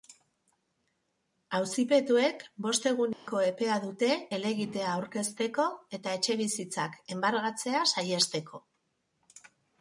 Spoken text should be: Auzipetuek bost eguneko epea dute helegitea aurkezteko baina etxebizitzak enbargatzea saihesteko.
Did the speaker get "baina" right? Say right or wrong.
wrong